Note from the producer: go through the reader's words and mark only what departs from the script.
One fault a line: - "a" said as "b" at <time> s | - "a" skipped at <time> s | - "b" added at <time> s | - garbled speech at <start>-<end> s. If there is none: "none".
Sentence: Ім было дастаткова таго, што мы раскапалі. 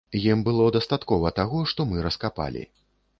none